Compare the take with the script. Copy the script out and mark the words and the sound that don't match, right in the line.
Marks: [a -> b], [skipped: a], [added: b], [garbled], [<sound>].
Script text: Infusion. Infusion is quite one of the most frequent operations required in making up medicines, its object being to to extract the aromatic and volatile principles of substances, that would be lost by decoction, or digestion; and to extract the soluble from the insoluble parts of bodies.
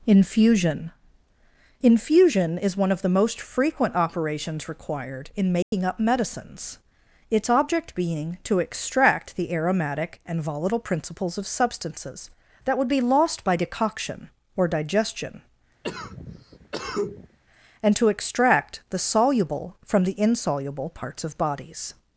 Infusion. Infusion is [skipped: quite] one of the most frequent operations required in making [dropout] up medicines, its object being to [skipped: to] extract the aromatic and volatile principles of substances, that would be lost by decoction, or digestion; [cough] and to extract the soluble from the insoluble parts of bodies.